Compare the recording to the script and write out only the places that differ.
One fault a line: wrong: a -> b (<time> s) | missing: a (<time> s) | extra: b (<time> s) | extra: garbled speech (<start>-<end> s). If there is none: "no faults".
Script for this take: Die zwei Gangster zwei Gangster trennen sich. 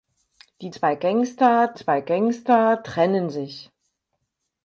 no faults